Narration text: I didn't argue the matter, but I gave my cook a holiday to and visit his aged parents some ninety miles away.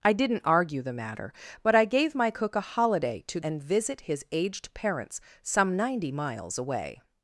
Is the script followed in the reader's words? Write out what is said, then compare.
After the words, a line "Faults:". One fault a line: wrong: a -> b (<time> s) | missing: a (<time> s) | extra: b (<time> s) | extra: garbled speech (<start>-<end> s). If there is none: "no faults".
I didn't argue the matter, but I gave my cook a holiday to and visit his aged parents some ninety miles away.
Faults:
no faults